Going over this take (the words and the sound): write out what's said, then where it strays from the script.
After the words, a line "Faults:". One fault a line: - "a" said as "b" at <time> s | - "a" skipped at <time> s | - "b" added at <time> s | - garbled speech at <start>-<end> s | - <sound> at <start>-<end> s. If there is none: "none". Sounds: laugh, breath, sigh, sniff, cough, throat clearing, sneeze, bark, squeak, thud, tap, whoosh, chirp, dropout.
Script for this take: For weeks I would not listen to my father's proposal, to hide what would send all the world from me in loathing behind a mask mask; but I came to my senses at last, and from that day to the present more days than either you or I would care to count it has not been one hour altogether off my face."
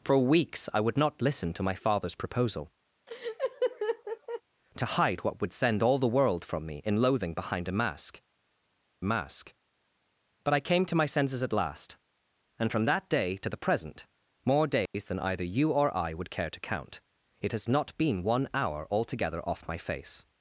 For weeks I would not listen to my father's proposal, to hide what would send all the world from me in loathing behind a mask mask; but I came to my senses at last, and from that day to the present more days than either you or I would care to count it has not been one hour altogether off my face."
Faults:
- laugh at 3.1-4.4 s
- dropout at 14.9-14.9 s